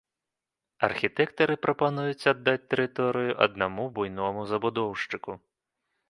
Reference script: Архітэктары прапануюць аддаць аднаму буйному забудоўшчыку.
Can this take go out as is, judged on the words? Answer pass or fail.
fail